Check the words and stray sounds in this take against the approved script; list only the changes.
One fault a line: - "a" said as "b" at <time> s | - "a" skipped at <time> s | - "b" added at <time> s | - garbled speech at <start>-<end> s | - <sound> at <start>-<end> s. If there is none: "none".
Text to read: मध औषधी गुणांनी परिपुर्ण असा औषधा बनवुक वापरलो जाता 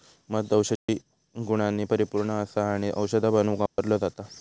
- dropout at 0.8-0.9 s
- "आणि" added at 2.7 s
- dropout at 3.7-3.8 s